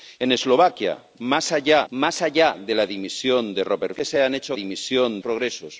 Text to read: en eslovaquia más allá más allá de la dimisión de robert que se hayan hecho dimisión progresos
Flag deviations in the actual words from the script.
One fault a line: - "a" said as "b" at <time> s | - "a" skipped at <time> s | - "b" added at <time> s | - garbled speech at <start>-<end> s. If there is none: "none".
none